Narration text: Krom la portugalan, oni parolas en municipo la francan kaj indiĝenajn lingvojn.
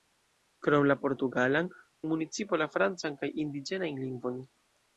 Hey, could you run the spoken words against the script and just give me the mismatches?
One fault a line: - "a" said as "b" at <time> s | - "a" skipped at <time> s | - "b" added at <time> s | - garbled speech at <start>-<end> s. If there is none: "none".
- "oni parolas" skipped at 1.7 s